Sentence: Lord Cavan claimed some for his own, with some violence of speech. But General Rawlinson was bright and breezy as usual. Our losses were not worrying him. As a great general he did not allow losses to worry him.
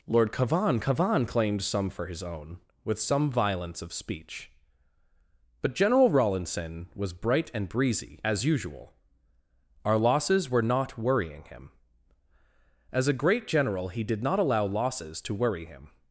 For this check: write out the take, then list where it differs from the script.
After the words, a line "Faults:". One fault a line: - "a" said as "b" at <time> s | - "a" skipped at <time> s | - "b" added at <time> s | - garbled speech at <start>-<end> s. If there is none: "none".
Lord Cavan Cavan claimed some for his own, with some violence of speech. But General Rawlinson was bright and breezy as usual. Our losses were not worrying him. As a great general he did not allow losses to worry him.
Faults:
- "Cavan" added at 0.8 s